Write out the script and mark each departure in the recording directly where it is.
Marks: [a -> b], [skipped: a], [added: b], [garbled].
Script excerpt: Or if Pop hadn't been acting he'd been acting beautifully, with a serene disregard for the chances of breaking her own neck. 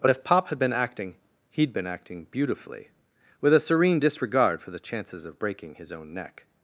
[Or -> But] if Pop [hadn't -> had] been acting he'd been acting beautifully, with a serene disregard for the chances of breaking [her -> his] own neck.